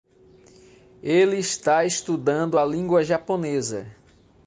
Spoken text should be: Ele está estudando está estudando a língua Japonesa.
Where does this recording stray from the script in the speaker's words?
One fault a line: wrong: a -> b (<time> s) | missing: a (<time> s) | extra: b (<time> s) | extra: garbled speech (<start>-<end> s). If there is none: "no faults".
missing: está estudando (2.6 s)